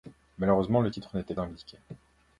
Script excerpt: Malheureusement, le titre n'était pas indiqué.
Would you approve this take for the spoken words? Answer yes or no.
no